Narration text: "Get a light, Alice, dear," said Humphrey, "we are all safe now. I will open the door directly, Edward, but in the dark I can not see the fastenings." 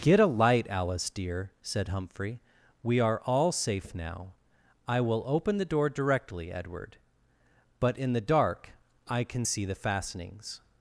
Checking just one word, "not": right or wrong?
wrong